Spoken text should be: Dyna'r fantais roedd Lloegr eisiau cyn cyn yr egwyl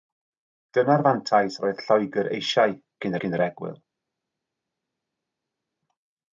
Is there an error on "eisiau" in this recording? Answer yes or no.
no